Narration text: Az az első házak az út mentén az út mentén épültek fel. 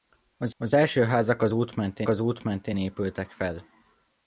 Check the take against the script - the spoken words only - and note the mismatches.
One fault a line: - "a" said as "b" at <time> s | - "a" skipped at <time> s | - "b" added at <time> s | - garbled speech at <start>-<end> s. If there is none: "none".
none